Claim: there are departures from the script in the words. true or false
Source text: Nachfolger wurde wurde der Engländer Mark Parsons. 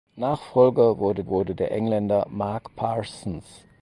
false